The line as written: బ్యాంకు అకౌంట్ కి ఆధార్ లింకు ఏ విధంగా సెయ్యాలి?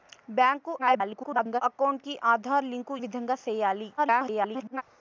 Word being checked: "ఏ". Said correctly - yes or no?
no